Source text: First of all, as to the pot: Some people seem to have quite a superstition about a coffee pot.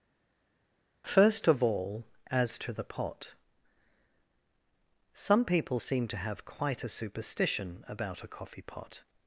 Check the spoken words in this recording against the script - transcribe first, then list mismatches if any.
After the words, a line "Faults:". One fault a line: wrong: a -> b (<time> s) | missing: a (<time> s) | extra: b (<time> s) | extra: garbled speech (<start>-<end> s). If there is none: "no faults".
First of all, as to the pot: Some people seem to have quite a superstition about a coffee pot.
Faults:
no faults